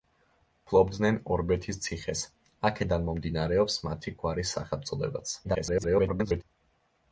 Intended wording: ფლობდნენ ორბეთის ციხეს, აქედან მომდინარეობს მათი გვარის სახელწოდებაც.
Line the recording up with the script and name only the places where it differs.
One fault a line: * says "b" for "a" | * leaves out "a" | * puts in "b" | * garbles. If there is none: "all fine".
* garbles